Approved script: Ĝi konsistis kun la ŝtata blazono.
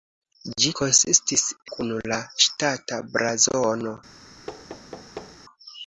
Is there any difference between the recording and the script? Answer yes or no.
no